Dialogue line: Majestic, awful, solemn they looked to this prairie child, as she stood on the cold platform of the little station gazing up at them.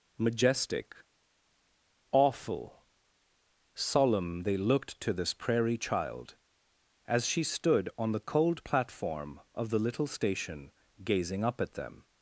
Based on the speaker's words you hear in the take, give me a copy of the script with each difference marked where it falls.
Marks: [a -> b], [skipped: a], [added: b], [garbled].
Majestic, awful, solemn they looked to this prairie child, as she stood on the cold platform of the little station gazing up at them.